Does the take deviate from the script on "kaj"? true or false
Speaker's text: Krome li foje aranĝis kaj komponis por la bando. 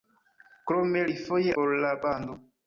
true